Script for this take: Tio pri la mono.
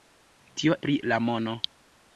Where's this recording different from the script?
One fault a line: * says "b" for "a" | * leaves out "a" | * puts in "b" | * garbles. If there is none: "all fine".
all fine